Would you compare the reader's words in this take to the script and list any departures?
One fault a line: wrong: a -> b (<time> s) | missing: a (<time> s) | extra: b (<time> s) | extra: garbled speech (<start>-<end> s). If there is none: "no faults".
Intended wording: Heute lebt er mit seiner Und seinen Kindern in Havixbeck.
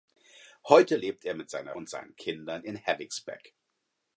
no faults